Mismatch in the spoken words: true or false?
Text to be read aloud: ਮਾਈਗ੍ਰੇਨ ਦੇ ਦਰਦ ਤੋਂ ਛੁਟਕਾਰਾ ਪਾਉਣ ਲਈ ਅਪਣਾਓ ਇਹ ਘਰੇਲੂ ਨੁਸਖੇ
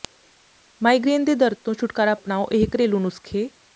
true